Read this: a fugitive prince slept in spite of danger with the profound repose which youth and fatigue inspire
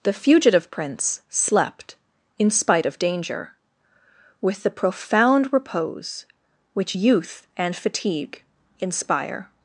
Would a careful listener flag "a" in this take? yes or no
yes